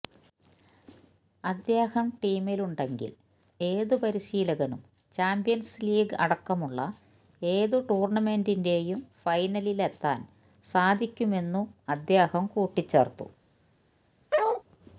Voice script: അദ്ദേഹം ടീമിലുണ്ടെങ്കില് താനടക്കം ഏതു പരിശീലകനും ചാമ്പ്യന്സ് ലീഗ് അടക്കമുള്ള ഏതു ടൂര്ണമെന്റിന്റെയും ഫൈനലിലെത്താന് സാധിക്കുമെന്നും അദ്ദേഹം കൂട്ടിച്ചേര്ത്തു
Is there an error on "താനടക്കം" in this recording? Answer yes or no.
yes